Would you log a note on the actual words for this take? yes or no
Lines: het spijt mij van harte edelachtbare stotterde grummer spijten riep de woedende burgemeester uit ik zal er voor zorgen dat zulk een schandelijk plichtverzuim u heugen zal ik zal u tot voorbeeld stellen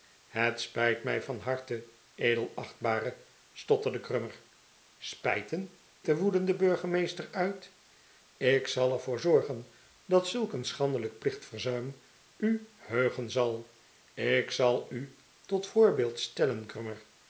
yes